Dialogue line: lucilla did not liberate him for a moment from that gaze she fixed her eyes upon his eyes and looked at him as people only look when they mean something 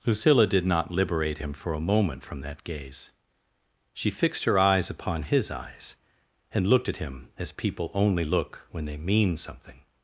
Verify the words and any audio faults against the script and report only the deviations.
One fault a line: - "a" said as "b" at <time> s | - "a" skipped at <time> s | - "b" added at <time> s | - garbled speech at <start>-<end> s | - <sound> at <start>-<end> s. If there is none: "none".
none